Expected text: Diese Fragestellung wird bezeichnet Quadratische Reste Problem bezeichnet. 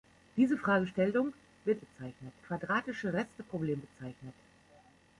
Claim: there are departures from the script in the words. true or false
false